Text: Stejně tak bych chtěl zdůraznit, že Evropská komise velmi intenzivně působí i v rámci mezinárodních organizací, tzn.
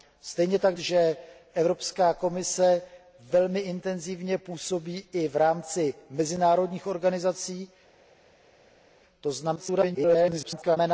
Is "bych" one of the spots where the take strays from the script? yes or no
yes